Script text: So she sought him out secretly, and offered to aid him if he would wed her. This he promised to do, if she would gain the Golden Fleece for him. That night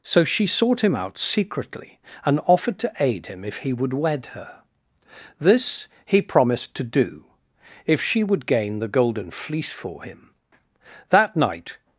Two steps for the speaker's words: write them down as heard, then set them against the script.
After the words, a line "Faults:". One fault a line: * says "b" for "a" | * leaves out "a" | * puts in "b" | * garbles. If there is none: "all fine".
So she sought him out secretly, and offered to aid him if he would wed her. This he promised to do, if she would gain the Golden Fleece for him. That night
Faults:
all fine